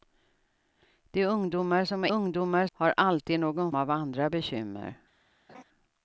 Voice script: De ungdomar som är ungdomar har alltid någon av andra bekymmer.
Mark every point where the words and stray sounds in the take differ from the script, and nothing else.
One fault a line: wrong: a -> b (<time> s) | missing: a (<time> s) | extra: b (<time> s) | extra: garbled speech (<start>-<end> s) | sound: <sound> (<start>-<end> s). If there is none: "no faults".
sound: laugh (5.5-5.6 s)